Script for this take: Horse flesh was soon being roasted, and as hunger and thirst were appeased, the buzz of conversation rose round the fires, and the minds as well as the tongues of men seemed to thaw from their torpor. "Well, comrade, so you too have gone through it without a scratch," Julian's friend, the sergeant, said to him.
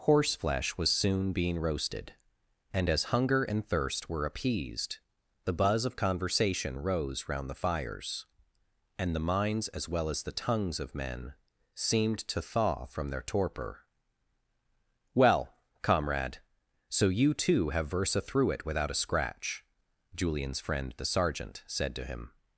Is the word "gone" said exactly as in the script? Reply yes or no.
no